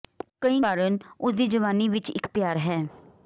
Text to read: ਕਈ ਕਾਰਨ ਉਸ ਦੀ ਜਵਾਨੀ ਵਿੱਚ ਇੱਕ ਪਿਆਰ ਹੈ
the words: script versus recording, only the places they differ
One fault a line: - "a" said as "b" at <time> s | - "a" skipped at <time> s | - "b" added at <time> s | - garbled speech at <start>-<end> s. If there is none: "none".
none